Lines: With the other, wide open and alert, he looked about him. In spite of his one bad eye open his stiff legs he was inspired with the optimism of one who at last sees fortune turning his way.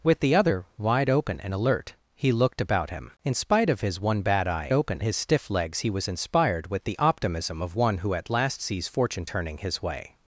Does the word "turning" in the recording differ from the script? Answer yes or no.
no